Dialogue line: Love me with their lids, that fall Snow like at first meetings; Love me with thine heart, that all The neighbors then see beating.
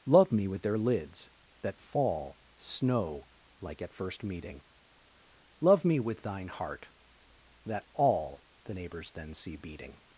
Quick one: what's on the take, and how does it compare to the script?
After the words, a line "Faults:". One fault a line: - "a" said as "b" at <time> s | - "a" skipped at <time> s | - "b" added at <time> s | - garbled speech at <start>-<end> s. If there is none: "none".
Love me with their lids, that fall Snow like at first meeting; Love me with thine heart, that all The neighbors then see beating.
Faults:
- "meetings" said as "meeting" at 4.2 s